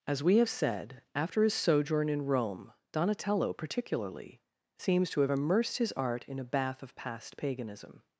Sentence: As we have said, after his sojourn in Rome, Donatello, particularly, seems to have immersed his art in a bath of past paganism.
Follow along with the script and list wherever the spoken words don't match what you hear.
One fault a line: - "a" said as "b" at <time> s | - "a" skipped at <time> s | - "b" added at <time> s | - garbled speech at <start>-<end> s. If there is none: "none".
none